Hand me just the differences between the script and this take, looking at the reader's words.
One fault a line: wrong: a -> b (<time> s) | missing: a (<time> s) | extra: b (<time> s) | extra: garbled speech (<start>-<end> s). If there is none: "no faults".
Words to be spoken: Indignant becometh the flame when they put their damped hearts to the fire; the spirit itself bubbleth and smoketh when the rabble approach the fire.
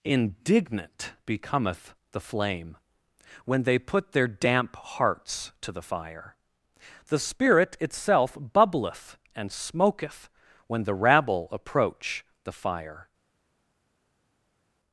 wrong: damped -> damp (4.3 s)